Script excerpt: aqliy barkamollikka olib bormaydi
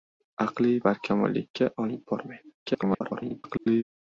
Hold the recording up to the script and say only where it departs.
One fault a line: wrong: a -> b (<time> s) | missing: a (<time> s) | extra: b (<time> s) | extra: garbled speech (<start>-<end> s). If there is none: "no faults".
extra: garbled speech (2.6-3.8 s)